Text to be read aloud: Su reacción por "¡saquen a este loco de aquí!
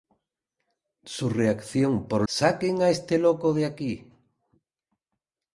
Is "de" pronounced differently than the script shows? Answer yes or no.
no